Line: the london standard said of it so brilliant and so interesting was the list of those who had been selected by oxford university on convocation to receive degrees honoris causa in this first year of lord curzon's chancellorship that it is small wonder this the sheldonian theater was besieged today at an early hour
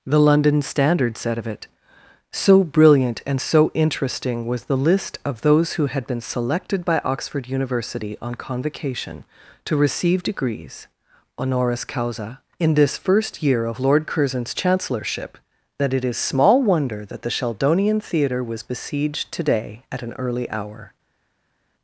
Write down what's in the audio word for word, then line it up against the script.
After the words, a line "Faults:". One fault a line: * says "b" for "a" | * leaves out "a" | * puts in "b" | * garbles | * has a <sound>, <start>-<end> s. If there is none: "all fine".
the london standard said of it so brilliant and so interesting was the list of those who had been selected by oxford university on convocation to receive degrees honoris causa in this first year of lord curzon's chancellorship that it is small wonder that the sheldonian theater was besieged today at an early hour
Faults:
* says "that" for "this"